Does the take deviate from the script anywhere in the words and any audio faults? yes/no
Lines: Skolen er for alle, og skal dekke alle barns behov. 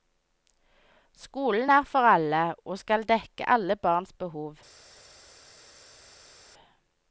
no